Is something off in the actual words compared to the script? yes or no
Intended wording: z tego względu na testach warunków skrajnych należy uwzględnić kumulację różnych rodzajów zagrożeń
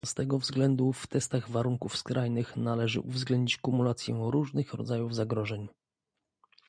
yes